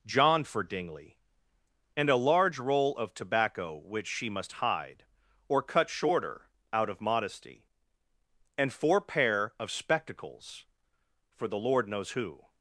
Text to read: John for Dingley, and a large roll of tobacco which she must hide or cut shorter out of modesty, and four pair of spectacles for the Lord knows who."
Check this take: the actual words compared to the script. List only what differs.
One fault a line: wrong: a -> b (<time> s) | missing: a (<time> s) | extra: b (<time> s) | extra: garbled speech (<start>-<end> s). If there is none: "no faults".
no faults